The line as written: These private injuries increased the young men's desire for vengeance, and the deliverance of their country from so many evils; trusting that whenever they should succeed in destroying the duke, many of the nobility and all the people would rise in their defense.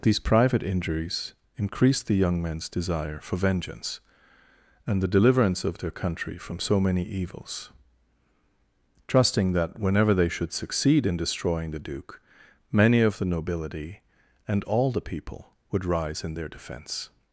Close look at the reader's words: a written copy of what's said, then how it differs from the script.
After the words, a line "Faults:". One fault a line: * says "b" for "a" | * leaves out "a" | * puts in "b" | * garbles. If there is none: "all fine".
These private injuries increased the young men's desire for vengeance, and the deliverance of their country from so many evils; trusting that whenever they should succeed in destroying the duke, many of the nobility and all the people would rise in their defense.
Faults:
all fine